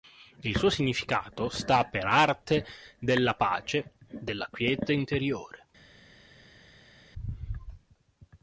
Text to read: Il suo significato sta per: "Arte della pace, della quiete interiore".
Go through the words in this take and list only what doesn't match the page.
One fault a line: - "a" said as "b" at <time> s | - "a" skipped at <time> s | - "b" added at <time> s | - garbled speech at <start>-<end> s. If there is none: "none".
none